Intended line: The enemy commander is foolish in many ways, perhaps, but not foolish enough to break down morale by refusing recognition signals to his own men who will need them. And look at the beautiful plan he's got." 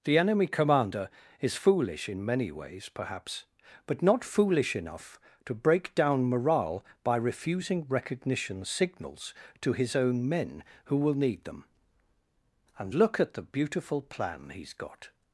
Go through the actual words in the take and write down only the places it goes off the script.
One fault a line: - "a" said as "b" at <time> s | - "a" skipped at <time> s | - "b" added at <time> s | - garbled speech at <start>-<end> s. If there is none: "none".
none